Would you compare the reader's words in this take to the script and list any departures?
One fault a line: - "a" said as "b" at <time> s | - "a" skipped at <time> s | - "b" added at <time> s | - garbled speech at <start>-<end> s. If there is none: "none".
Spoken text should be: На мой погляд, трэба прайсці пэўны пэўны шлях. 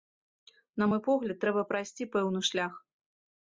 - "пэўны" skipped at 2.5 s